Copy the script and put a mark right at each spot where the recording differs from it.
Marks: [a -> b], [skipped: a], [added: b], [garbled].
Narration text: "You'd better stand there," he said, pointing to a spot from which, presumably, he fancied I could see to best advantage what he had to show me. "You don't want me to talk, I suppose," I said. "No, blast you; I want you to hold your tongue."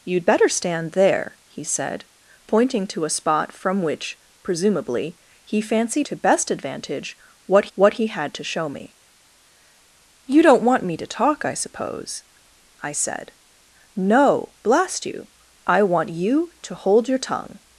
"You'd better stand there," he said, pointing to a spot from which, presumably, he fancied [skipped: I could see] to best advantage what [added: what] he had to show me. "You don't want me to talk, I suppose," I said. "No, blast you; I want you to hold your tongue."